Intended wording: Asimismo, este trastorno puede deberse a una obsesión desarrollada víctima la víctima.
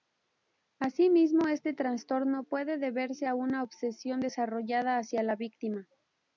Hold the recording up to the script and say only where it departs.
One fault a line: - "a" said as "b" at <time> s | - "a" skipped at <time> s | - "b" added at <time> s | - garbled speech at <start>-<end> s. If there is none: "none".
- "víctima" said as "hacia" at 5.0 s